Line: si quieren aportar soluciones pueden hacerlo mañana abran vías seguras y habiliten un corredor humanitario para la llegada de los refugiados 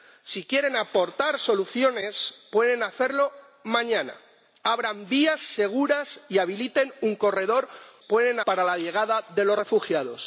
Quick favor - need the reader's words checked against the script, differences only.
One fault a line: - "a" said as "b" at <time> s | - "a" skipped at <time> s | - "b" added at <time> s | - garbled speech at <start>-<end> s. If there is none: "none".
- "humanitario" said as "pueden" at 8.1 s